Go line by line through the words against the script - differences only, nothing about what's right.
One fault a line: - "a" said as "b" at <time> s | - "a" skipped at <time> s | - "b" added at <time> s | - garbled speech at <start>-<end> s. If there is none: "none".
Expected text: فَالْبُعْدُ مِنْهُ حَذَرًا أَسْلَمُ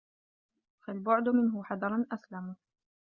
none